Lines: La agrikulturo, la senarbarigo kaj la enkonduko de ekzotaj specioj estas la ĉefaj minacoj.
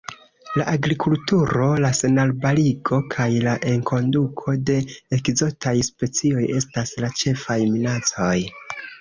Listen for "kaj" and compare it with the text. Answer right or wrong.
right